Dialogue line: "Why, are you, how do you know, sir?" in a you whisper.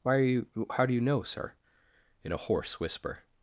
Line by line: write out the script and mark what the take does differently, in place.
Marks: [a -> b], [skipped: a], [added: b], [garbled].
"Why, are you, how do you know, sir?" in a [you -> hoarse] whisper.